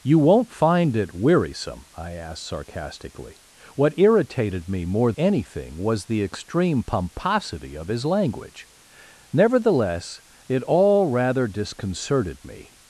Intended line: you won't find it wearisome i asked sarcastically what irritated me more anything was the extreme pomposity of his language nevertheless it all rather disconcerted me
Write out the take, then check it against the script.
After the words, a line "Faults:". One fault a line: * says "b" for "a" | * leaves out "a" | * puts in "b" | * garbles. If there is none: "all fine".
you won't find it wearisome i asked sarcastically what irritated me more anything was the extreme pomposity of his language nevertheless it all rather disconcerted me
Faults:
all fine